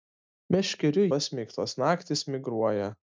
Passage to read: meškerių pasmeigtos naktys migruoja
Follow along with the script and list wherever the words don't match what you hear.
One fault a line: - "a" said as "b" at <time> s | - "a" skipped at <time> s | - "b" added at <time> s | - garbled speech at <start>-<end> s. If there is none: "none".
none